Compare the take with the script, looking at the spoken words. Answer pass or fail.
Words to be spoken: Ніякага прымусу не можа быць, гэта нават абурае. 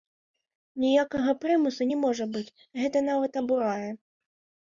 pass